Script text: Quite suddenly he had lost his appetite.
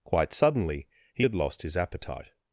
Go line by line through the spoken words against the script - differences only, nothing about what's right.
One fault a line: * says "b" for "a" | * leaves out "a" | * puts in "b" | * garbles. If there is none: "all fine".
all fine